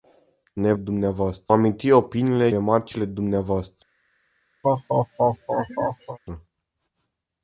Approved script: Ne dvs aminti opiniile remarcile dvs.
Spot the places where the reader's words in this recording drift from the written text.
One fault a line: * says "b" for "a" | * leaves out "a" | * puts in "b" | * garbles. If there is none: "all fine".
all fine